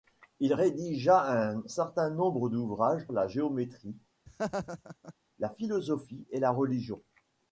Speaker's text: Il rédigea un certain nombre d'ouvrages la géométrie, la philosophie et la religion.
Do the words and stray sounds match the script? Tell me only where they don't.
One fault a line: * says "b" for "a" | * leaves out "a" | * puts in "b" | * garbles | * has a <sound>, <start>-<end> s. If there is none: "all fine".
* has a laugh, 4.3-5.1 s